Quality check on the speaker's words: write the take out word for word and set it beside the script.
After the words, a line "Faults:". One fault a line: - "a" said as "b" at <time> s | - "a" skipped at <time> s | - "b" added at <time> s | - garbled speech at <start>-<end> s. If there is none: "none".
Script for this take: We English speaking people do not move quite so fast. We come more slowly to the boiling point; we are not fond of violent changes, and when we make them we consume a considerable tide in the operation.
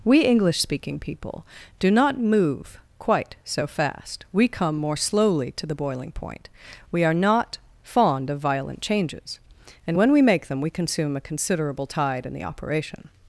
We English speaking people do not move quite so fast. We come more slowly to the boiling point; we are not fond of violent changes, and when we make them we consume a considerable tide in the operation.
Faults:
none